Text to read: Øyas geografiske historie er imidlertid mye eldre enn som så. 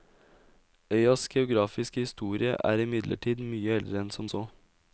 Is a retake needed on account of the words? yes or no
no